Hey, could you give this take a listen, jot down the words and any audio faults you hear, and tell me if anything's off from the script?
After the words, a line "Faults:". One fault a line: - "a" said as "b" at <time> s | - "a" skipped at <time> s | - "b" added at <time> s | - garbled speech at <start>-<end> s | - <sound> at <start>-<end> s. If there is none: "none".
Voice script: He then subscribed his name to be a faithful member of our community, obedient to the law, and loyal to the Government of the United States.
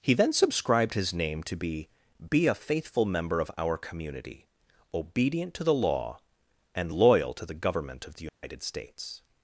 He then subscribed his name to be be a faithful member of our community, obedient to the law, and loyal to the Government of the United States.
Faults:
- "be" added at 2.3 s
- dropout at 8.3-8.4 s